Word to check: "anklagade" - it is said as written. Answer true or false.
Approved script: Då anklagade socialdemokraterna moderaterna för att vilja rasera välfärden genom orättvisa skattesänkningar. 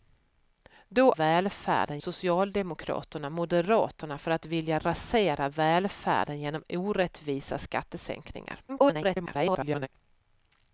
false